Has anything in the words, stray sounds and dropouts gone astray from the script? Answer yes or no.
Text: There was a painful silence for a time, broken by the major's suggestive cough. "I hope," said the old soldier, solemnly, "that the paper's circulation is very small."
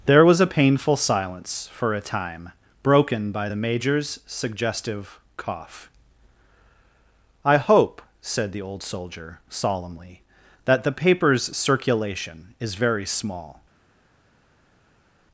no